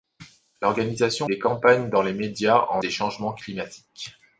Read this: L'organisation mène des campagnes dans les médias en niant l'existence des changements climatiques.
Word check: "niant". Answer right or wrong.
wrong